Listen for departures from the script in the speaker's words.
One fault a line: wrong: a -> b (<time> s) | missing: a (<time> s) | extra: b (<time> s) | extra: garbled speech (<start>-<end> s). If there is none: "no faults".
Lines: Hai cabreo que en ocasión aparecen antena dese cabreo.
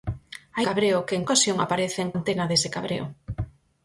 no faults